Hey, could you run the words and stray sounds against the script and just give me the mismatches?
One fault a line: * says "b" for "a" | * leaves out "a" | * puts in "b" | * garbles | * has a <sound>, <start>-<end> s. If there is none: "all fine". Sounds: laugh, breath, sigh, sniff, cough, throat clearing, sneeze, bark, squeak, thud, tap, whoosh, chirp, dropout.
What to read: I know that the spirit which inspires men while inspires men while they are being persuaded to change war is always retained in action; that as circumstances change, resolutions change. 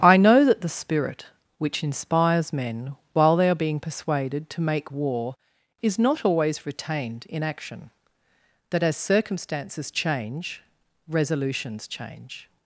* leaves out "inspires men while"
* says "make" for "change"
* puts in "not"